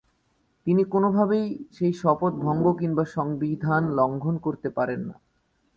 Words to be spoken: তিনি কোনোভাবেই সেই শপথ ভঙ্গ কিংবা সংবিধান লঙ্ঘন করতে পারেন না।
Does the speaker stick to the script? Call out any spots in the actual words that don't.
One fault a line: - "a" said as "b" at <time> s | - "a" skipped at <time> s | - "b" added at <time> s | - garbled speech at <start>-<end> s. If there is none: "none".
none